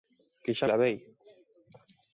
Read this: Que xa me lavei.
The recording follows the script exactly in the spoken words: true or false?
false